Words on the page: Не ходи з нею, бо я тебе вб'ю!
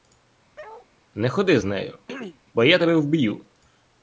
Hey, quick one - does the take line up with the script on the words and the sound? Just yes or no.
no